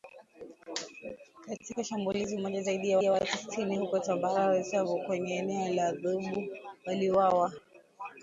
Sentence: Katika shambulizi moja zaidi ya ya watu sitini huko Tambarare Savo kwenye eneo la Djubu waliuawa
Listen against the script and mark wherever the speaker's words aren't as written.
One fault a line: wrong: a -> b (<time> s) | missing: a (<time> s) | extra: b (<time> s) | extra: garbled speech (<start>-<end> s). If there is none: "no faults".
no faults